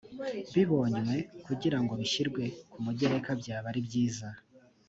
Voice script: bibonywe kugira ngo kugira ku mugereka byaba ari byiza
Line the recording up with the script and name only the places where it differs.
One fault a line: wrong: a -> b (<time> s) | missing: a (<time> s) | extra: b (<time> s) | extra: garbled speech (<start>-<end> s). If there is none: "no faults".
wrong: kugira -> bishyirwe (2.0 s)